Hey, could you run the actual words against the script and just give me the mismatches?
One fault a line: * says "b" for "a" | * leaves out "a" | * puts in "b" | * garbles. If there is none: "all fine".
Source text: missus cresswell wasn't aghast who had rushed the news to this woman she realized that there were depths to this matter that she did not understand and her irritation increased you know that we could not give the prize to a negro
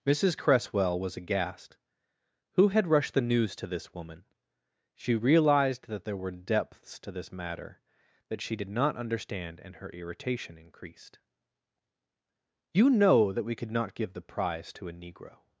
* says "was" for "wasn't"